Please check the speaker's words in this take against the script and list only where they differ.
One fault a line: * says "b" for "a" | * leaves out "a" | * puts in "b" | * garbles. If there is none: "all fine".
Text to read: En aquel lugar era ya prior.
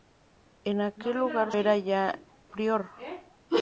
all fine